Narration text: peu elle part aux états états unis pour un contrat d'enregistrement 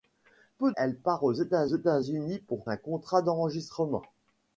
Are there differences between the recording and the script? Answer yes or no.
no